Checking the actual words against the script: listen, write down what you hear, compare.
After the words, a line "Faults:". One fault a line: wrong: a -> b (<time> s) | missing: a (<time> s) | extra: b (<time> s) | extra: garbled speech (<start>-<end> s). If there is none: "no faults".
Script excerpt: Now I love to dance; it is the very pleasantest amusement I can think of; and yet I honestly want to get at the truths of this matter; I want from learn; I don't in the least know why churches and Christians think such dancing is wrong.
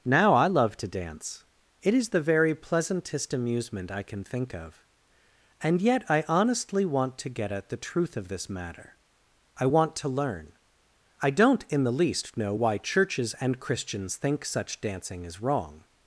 Now I love to dance; it is the very pleasantest amusement I can think of; and yet I honestly want to get at the truth of this matter; I want to learn; I don't in the least know why churches and Christians think such dancing is wrong.
Faults:
wrong: truths -> truth (7.8 s)
wrong: from -> to (10.0 s)